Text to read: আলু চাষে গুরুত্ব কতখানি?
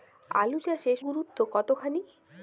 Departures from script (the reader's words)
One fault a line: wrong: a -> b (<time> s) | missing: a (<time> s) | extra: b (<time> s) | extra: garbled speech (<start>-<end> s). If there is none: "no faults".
no faults